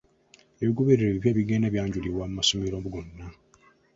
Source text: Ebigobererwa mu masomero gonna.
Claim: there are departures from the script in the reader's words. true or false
true